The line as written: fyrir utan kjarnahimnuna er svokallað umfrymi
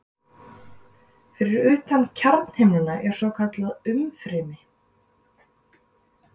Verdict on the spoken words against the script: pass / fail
pass